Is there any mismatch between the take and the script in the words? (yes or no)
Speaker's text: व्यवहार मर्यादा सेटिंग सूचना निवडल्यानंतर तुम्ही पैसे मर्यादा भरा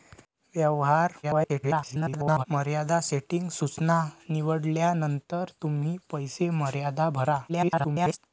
yes